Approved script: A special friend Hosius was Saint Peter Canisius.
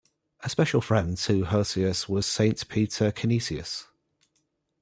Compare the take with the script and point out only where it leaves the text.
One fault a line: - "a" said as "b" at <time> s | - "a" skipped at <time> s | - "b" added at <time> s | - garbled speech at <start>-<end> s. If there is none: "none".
- "to" added at 1.2 s